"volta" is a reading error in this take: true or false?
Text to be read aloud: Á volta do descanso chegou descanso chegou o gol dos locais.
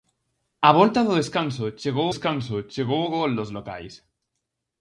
false